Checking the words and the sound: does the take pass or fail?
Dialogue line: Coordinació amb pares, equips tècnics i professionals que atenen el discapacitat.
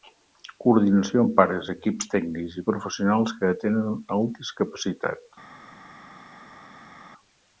pass